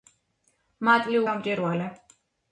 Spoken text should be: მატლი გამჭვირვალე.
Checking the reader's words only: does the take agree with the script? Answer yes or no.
yes